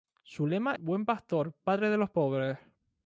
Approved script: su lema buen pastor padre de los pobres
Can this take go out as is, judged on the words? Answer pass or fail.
pass